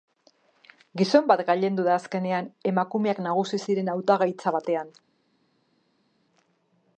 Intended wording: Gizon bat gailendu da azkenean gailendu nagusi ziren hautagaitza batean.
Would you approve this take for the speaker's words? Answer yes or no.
no